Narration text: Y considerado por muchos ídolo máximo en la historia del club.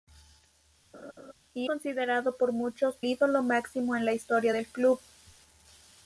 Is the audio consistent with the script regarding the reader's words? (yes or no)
yes